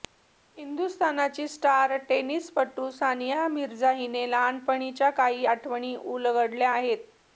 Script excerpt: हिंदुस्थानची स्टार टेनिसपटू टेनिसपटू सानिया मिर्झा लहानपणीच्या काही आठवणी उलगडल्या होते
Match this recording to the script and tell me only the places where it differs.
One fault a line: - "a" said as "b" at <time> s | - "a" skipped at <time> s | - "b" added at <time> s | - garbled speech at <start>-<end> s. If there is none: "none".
- "टेनिसपटू" skipped at 2.9 s
- "हिने" added at 3.9 s
- "होते" said as "आहेत" at 6.7 s